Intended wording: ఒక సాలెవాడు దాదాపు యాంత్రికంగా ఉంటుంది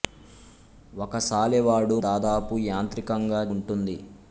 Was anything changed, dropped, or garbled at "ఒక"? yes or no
no